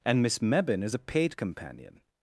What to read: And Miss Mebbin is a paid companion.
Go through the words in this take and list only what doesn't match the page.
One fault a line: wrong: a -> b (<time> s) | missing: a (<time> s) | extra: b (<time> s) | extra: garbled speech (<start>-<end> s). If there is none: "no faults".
no faults